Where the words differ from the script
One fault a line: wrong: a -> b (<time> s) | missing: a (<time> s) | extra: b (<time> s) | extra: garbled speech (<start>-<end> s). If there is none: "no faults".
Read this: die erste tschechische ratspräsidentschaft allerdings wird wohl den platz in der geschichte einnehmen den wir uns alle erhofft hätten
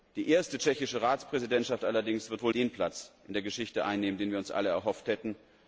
no faults